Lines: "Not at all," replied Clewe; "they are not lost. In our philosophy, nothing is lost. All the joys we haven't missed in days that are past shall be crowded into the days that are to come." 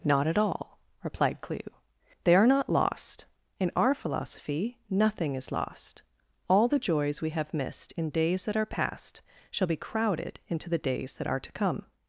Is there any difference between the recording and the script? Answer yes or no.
yes